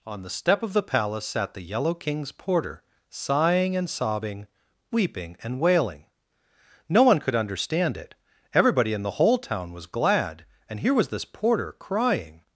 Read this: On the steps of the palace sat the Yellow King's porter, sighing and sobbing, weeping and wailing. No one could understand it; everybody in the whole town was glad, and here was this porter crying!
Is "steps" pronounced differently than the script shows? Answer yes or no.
yes